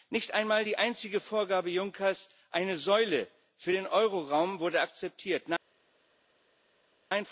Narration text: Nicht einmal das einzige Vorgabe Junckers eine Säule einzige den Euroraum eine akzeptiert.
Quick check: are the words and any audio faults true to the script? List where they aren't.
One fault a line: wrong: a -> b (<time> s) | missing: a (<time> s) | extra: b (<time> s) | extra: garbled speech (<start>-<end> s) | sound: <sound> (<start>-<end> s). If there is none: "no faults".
wrong: das -> die (0.6 s)
wrong: einzige -> für (3.6 s)
wrong: eine -> wurde (4.6 s)